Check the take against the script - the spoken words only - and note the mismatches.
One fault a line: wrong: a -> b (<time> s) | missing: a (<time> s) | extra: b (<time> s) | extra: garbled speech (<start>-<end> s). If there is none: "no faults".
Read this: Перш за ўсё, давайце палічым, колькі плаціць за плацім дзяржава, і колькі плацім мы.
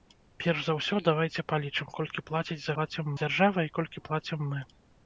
no faults